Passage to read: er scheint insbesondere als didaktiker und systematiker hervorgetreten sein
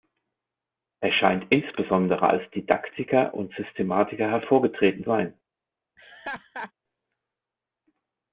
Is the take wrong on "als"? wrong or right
right